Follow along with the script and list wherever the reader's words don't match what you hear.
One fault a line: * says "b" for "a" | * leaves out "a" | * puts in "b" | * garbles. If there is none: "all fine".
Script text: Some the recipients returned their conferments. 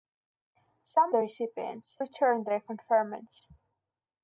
all fine